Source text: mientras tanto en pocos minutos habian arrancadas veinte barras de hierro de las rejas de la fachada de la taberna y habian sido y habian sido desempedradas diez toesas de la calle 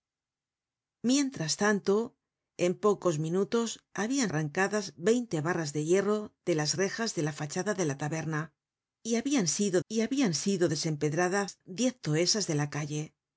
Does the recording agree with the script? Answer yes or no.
yes